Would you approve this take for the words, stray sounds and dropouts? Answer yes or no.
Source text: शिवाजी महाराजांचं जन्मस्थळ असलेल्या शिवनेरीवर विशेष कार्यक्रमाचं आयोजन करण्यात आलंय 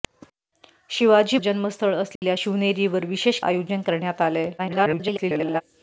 no